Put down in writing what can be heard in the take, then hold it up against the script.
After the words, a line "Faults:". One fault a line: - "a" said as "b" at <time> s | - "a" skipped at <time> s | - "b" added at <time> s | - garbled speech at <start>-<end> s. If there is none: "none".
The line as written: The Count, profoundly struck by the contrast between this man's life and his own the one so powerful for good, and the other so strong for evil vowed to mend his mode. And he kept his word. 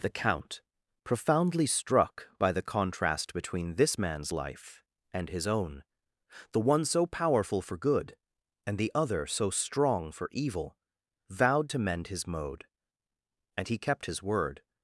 The Count, profoundly struck by the contrast between this man's life and his own the one so powerful for good, and the other so strong for evil vowed to mend his mode. And he kept his word.
Faults:
none